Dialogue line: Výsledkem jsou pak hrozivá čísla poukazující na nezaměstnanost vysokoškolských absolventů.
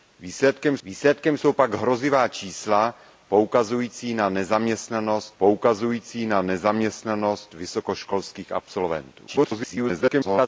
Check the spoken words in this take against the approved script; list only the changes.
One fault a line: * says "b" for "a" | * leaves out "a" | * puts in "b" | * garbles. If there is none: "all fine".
* puts in "výsledkem"
* puts in "poukazující na nezaměstnanost"
* garbles